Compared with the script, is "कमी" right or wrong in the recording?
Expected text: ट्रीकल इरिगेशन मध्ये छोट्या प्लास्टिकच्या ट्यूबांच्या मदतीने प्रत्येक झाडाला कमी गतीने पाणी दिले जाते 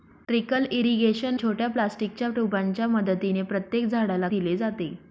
wrong